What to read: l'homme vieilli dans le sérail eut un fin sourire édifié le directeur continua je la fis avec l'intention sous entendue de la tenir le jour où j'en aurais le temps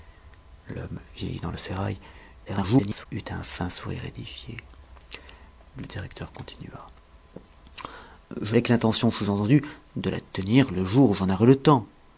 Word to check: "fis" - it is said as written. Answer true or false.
false